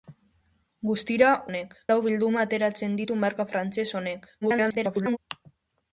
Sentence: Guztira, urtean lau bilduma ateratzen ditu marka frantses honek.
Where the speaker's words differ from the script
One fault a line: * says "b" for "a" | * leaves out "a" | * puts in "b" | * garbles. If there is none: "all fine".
* says "honek" for "urtean"
* garbles